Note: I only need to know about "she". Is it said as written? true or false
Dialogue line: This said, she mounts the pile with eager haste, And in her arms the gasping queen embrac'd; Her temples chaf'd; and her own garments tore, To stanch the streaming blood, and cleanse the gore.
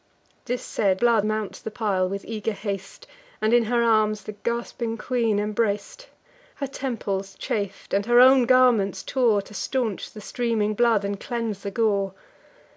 false